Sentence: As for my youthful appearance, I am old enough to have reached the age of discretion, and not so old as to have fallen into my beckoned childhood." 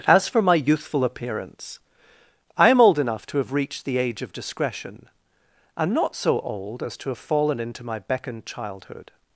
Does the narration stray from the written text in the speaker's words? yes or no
no